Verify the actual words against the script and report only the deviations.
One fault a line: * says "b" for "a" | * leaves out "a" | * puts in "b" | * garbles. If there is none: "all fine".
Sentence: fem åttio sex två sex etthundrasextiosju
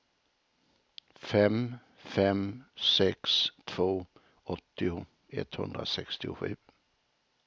* says "fem" for "åttio"
* says "åttio" for "sex"